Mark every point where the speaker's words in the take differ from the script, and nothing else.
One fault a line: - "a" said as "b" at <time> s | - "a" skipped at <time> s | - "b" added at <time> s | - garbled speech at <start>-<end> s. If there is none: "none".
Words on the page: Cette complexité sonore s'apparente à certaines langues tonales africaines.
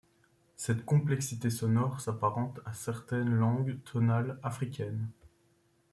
none